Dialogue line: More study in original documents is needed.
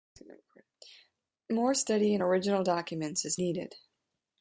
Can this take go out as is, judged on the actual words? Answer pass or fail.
pass